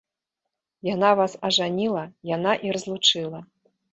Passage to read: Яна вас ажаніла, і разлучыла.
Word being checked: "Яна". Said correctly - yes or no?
yes